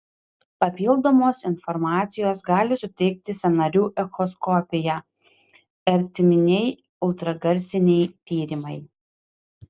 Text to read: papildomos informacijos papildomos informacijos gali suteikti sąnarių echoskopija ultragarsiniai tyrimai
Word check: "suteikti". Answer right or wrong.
right